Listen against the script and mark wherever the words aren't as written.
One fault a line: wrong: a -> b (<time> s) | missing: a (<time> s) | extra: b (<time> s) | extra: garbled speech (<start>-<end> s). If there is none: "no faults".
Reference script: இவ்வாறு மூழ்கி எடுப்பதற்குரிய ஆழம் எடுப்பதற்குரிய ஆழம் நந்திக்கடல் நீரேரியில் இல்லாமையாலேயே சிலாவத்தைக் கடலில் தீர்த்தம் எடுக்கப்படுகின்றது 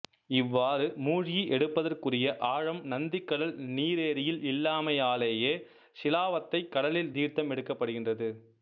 missing: எடுப்பதற்குரிய ஆழம் (2.8 s)